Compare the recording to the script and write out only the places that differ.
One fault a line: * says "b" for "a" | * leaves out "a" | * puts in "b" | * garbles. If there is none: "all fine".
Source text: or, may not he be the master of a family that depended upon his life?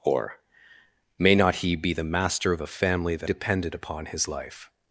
all fine